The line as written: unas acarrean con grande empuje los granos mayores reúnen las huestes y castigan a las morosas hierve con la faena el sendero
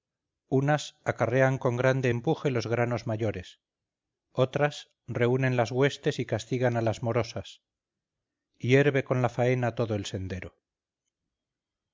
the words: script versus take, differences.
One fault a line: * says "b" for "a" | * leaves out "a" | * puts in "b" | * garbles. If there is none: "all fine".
* puts in "otras"
* puts in "todo"